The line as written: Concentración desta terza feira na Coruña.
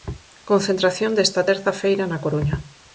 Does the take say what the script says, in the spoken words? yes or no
yes